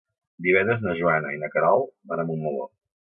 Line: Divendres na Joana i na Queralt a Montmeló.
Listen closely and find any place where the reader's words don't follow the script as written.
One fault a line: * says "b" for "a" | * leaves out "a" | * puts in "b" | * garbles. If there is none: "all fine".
* puts in "van"